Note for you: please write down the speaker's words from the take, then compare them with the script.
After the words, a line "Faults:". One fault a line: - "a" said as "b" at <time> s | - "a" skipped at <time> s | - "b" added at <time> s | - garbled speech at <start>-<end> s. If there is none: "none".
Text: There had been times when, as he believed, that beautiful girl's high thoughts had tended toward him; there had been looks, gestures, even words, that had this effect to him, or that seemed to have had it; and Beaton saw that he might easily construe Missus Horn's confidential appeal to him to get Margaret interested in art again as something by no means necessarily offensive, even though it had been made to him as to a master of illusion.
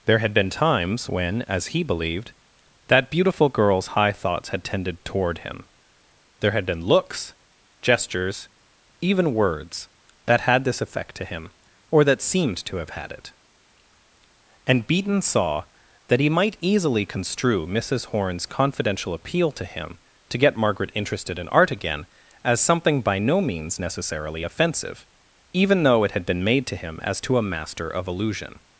There had been times when, as he believed, that beautiful girl's high thoughts had tended toward him; there had been looks, gestures, even words, that had this effect to him, or that seemed to have had it; and Beaton saw that he might easily construe Missus Horn's confidential appeal to him to get Margaret interested in art again as something by no means necessarily offensive, even though it had been made to him as to a master of illusion.
Faults:
none